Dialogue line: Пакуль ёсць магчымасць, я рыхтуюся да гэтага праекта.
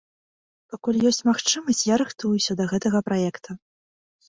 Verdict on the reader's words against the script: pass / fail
pass